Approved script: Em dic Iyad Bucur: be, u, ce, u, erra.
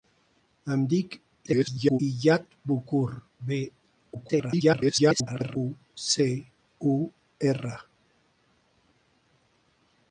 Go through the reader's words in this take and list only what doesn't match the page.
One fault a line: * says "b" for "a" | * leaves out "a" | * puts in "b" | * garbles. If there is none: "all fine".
* garbles
* garbles